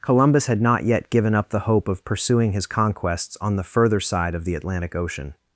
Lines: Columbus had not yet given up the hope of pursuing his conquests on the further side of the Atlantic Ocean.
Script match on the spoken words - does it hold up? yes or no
yes